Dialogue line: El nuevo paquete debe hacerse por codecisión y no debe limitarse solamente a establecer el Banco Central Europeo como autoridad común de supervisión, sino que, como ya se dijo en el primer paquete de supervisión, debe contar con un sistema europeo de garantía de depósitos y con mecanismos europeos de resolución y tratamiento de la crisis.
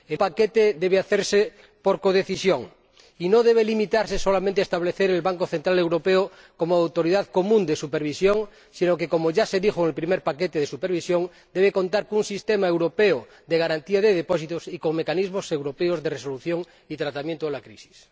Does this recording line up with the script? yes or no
no